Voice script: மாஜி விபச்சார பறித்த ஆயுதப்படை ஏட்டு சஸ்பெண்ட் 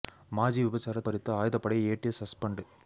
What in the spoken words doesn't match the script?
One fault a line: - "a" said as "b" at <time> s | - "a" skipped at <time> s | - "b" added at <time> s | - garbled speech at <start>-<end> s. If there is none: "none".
none